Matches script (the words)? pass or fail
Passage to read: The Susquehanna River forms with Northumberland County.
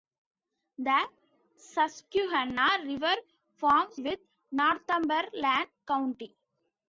pass